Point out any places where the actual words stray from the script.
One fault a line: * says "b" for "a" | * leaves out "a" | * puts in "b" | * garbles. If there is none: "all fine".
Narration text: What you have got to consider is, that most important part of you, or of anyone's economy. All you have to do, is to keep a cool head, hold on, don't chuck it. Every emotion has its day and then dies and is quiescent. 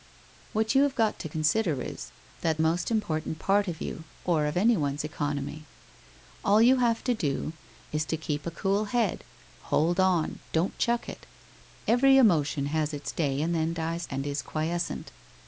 all fine